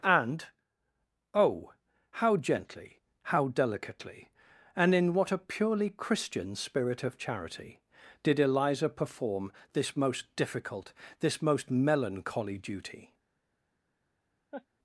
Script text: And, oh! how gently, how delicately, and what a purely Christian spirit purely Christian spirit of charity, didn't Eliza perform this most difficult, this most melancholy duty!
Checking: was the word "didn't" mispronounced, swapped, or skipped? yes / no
yes